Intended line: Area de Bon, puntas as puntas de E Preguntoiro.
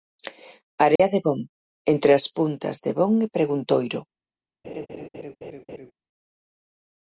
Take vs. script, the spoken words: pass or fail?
fail